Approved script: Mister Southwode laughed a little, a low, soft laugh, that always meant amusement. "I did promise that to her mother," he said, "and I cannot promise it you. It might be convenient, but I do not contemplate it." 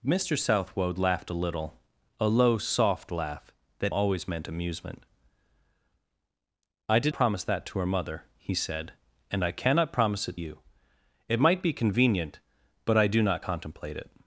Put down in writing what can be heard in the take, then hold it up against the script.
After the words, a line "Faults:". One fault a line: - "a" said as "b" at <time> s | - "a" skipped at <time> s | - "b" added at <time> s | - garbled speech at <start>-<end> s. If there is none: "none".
Mister Southwode laughed a little, a low, soft laugh, that always meant amusement. "I did promise that to her mother," he said, "and I cannot promise it you. It might be convenient, but I do not contemplate it."
Faults:
none